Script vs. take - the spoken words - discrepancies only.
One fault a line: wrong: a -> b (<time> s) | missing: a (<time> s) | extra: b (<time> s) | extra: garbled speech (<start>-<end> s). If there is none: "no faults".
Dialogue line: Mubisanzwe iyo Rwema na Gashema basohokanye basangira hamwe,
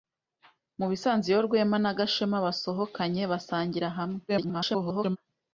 extra: garbled speech (4.3-5.2 s)